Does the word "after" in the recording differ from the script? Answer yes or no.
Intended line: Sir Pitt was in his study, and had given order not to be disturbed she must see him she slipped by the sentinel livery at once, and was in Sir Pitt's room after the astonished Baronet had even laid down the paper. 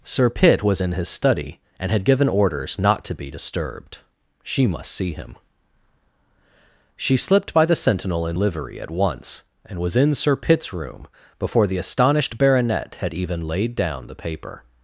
yes